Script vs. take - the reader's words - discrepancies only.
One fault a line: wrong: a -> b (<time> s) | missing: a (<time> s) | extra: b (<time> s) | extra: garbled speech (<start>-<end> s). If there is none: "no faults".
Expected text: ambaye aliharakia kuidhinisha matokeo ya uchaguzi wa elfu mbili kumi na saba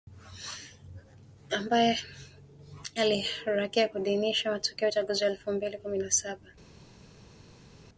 no faults